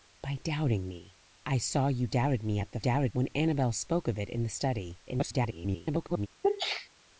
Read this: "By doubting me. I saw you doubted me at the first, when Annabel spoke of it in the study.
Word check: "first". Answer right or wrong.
wrong